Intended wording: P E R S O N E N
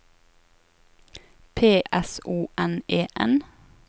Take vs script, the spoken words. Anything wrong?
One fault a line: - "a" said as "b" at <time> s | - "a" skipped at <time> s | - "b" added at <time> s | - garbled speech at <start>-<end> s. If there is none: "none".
- "E R" skipped at 1.8 s